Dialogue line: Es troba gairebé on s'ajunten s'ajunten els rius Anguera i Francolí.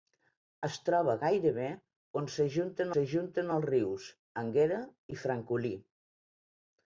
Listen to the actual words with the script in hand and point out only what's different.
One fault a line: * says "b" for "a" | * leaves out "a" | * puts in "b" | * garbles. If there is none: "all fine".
all fine